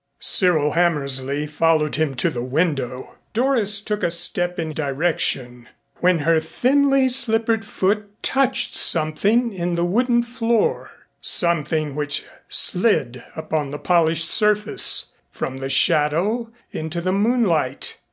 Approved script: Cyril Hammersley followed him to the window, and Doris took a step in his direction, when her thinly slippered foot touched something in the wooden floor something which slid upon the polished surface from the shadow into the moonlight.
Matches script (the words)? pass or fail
fail